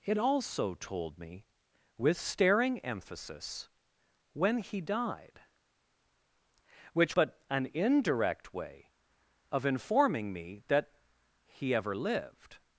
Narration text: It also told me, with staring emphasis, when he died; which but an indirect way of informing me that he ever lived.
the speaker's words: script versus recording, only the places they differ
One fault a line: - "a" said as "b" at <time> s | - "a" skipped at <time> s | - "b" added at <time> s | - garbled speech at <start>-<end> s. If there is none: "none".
none